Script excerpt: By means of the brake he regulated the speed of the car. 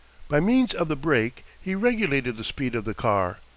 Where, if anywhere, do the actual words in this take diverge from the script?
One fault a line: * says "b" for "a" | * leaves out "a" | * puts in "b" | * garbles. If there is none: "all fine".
all fine